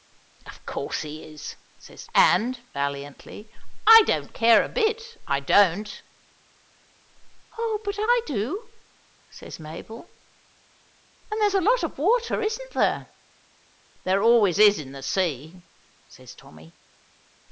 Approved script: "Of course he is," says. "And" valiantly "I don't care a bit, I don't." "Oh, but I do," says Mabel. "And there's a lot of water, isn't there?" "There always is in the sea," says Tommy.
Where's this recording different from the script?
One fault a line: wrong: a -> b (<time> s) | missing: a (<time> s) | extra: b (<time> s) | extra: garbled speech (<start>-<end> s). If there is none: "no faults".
no faults